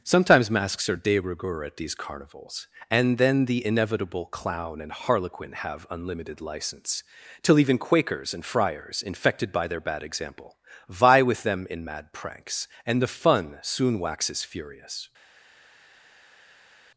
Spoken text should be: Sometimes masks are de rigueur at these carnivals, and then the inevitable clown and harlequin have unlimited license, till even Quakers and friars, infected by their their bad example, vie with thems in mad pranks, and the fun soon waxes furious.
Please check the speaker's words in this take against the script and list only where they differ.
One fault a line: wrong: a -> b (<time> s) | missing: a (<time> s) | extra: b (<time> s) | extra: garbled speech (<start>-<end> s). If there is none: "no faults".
missing: their (9.8 s)
wrong: thems -> them (11.4 s)